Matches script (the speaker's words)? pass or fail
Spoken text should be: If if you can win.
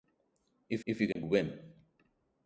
pass